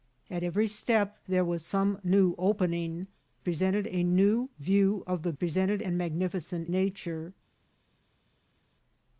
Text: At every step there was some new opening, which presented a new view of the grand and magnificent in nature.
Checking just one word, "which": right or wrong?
wrong